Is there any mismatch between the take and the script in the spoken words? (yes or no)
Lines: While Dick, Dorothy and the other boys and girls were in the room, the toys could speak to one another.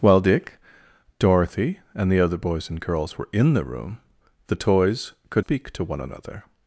no